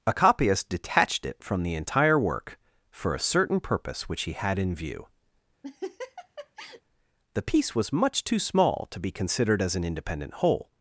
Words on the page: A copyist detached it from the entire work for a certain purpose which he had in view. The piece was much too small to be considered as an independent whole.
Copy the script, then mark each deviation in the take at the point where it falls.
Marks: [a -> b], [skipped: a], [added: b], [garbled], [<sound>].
A copyist detached it from the entire work for a certain purpose which he had in view. [laugh] The piece was much too small to be considered as an independent whole.